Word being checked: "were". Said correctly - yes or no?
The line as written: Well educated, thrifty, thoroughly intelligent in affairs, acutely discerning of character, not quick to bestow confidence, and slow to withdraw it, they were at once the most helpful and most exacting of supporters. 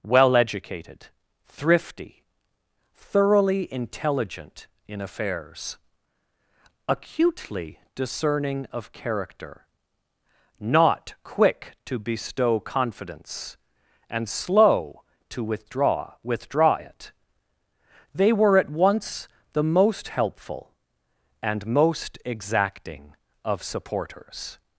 yes